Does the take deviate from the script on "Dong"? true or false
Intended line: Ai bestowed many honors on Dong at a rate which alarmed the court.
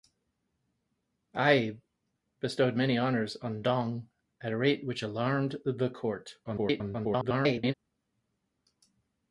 false